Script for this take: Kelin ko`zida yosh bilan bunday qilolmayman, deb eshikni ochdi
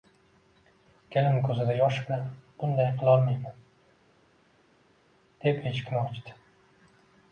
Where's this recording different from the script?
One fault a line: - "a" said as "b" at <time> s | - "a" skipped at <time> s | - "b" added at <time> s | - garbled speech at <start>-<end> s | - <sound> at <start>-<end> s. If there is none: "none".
none